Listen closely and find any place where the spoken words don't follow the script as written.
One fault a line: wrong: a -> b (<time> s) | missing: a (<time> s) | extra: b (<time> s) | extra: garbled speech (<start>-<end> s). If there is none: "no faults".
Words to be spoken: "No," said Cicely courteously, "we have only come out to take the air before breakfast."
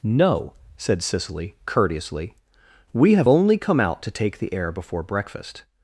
no faults